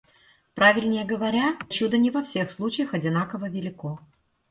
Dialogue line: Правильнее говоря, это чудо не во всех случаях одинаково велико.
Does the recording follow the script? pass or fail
fail